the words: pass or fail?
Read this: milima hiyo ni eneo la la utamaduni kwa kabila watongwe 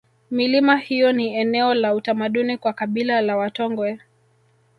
fail